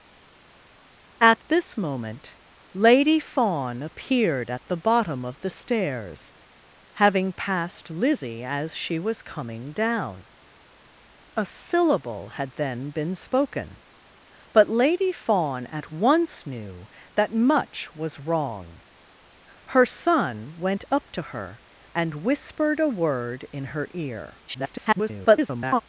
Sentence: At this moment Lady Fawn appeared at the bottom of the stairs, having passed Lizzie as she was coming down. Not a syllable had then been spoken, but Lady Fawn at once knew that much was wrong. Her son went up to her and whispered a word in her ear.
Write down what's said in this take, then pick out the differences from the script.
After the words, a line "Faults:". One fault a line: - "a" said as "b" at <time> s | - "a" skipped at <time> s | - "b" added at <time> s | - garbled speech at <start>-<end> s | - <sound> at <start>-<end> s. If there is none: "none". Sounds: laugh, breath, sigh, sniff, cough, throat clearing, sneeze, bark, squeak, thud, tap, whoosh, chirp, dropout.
At this moment Lady Fawn appeared at the bottom of the stairs, having passed Lizzie as she was coming down. A syllable had then been spoken, but Lady Fawn at once knew that much was wrong. Her son went up to her and whispered a word in her ear. [garbled]
Faults:
- "Not" skipped at 10.3 s
- garbled speech at 24.5-25.8 s